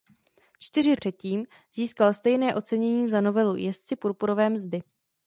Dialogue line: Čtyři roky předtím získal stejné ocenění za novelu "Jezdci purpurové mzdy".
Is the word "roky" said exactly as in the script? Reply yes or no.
no